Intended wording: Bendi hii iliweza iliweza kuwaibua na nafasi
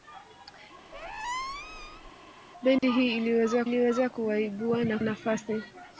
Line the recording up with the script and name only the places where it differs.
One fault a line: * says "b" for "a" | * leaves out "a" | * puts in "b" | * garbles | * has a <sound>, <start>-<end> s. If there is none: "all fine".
* has a squeak, 0.9-2.1 s
* has a dropout, 2.8-2.8 s